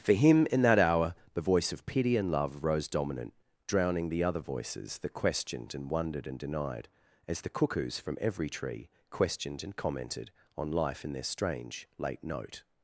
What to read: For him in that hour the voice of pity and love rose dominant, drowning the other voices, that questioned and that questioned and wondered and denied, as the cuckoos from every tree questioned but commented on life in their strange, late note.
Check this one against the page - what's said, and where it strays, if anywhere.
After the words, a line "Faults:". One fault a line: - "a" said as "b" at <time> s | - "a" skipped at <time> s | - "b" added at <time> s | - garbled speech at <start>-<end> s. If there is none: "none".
For him in that hour the voice of pity and love rose dominant, drowning the other voices, that questioned and wondered and denied, as the cuckoos from every tree questioned and commented on life in their strange, late note.
Faults:
- "that questioned and" skipped at 5.9 s
- "but" said as "and" at 9.6 s